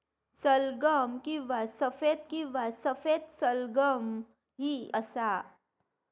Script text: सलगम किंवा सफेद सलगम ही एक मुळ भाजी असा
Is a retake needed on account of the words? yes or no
yes